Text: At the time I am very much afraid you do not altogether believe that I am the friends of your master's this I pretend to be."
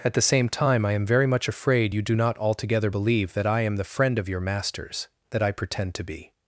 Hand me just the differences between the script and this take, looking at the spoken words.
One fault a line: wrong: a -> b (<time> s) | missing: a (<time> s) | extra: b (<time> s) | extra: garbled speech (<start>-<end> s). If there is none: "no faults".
extra: same (0.2 s)
wrong: friends -> friend (3.8 s)
wrong: this -> that (5.3 s)